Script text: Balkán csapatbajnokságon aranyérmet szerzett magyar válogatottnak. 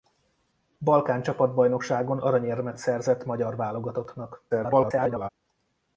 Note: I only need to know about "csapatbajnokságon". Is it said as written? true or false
true